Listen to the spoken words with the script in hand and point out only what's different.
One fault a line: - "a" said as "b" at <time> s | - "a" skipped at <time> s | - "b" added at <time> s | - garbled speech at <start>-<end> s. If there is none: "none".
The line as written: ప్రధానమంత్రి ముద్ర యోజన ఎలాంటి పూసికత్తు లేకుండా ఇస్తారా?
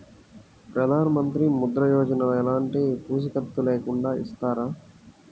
none